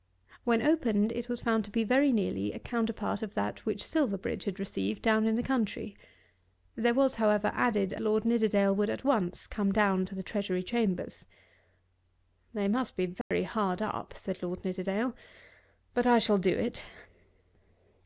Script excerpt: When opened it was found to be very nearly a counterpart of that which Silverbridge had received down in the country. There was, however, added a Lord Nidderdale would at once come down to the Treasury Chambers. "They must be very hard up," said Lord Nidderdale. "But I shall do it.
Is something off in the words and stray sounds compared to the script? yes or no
yes